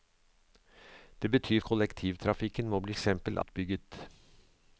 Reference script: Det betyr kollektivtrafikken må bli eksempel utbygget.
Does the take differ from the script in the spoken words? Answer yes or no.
no